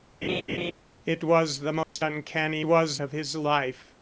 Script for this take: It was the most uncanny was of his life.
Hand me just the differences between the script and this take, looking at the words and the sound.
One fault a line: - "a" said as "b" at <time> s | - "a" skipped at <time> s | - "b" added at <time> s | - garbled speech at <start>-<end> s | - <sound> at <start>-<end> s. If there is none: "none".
- laugh at 0.2-0.7 s
- dropout at 1.8-2.0 s